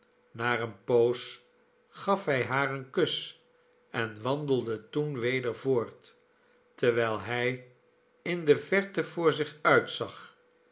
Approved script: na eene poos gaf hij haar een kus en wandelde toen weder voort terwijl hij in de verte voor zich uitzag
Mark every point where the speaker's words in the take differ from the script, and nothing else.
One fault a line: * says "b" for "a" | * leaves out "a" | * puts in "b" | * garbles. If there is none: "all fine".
all fine